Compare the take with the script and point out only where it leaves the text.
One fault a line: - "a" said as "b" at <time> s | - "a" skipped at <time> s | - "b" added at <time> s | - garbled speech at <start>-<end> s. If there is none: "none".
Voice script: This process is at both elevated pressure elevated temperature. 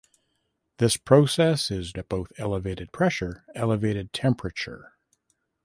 none